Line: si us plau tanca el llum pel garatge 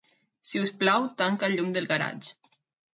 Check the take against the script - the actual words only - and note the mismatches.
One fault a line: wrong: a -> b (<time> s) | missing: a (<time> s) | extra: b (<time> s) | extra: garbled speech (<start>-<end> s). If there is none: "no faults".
wrong: pel -> del (1.8 s)